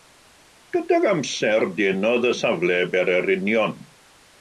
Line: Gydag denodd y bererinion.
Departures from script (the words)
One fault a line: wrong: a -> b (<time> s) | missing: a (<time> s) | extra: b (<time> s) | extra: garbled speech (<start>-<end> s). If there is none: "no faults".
extra: amser (1.1 s)
extra: safle (2.4 s)